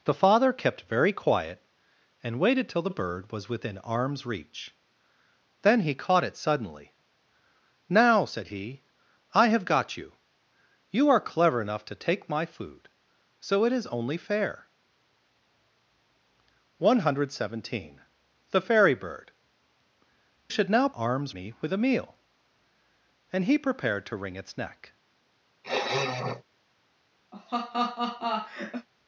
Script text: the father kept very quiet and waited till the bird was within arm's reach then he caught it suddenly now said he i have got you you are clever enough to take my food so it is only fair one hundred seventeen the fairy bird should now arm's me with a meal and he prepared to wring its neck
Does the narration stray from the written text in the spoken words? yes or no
no